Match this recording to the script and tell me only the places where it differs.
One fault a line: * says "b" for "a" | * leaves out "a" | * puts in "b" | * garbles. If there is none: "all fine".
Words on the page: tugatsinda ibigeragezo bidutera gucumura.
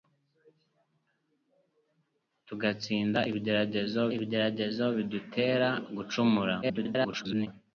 * puts in "ibigeragezo"
* garbles